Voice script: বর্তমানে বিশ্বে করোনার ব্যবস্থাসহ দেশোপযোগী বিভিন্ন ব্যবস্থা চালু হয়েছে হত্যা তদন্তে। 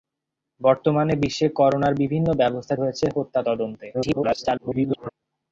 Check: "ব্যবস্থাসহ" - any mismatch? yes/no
yes